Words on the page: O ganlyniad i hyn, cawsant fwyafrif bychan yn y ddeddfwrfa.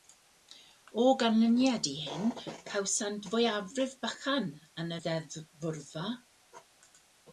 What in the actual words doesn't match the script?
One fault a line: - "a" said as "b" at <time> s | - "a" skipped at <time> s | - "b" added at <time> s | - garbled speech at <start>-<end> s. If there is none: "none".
none